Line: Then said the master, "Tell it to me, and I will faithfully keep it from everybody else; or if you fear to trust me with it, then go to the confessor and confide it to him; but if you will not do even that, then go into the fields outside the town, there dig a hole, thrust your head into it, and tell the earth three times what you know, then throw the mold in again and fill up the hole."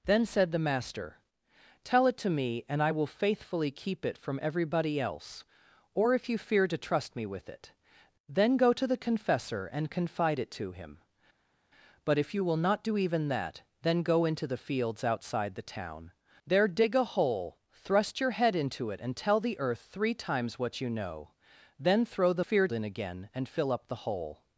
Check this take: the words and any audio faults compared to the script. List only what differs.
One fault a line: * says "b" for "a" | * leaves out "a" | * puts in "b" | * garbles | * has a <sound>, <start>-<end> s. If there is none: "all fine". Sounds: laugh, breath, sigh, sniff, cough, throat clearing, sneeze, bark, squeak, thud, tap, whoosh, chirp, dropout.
* says "fear" for "mold"